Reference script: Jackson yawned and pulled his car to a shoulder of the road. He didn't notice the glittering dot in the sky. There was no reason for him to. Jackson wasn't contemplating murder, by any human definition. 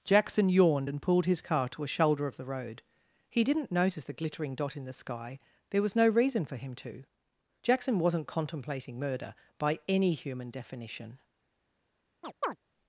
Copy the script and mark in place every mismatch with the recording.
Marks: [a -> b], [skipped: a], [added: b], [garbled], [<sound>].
Jackson yawned and pulled his car to a shoulder of the road. He didn't notice the glittering dot in the sky. There was no reason for him to. Jackson wasn't contemplating murder, by any human definition. [chirp]